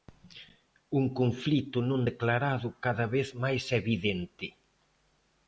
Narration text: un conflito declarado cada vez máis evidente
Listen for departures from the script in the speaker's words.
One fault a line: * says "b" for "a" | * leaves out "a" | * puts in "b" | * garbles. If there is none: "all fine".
* puts in "non"